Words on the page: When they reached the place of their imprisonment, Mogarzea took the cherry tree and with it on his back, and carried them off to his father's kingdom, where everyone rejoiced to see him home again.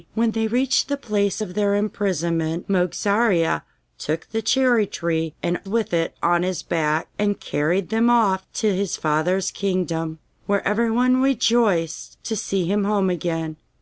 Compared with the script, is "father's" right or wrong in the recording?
right